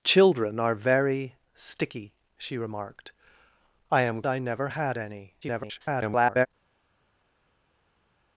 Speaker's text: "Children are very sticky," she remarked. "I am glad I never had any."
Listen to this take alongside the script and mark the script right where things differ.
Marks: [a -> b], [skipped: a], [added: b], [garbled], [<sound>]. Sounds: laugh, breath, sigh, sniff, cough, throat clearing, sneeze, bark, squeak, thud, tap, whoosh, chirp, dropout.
"Children are very sticky," she remarked. "I am [skipped: glad] I never had any." [garbled]